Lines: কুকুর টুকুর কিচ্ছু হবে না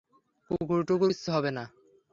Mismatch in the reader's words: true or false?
false